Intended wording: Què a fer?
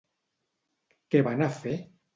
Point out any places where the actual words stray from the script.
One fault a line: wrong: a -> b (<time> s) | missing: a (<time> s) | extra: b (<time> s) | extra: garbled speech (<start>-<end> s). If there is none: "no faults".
extra: van (1.3 s)